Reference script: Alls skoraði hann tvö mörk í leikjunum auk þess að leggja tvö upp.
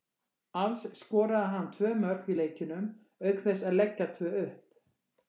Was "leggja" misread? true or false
false